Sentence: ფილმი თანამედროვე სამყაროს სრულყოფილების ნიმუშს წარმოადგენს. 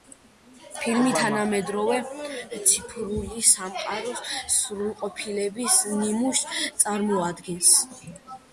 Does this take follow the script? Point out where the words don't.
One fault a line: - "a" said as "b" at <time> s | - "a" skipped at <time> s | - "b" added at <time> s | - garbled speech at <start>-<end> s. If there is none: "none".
- "ციფრული" added at 2.7 s